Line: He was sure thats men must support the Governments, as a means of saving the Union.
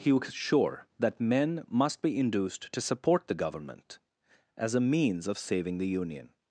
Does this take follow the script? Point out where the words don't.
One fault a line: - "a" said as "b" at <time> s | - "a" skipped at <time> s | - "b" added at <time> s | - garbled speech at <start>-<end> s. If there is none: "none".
- "thats" said as "that" at 1.0 s
- "be induced to" added at 2.0 s
- "Governments" said as "Government" at 3.4 s